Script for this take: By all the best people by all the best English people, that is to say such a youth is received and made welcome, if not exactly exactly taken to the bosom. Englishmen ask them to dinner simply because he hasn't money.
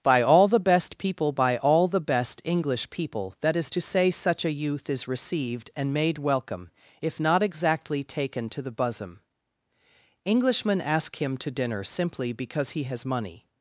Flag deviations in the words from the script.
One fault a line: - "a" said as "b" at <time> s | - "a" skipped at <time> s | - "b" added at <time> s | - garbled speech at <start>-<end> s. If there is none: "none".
- "exactly" skipped at 8.0 s
- "them" said as "him" at 11.2 s
- "hasn't" said as "has" at 12.8 s